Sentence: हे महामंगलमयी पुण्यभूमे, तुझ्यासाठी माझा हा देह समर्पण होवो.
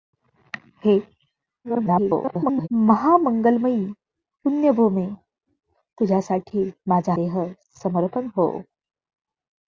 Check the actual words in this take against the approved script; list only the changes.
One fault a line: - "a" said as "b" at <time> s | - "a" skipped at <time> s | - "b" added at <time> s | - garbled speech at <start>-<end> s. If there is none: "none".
- garbled speech at 1.6-2.7 s
- "हा" skipped at 7.1 s